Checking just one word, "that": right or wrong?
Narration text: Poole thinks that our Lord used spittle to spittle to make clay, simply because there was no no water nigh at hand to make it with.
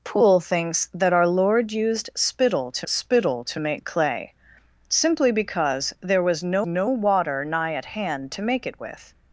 right